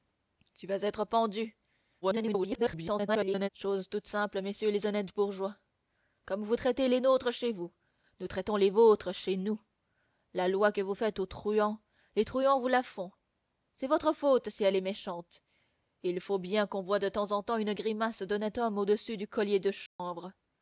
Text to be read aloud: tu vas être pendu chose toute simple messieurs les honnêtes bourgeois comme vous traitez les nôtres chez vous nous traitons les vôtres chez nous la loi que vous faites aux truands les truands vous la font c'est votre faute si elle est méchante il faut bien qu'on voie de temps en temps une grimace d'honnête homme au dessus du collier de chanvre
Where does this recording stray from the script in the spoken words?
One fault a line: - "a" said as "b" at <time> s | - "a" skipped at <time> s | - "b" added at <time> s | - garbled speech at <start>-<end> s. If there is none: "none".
- garbled speech at 2.0-3.5 s